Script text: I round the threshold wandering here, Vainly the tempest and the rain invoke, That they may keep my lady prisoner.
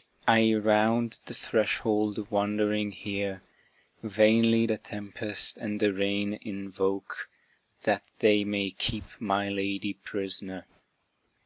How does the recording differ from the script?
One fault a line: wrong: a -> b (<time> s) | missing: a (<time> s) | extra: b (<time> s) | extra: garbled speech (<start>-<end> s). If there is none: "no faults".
no faults